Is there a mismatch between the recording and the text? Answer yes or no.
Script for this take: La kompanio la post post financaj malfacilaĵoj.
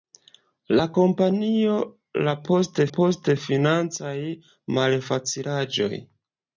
no